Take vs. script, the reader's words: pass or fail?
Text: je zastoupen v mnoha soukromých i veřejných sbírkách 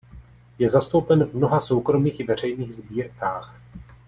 pass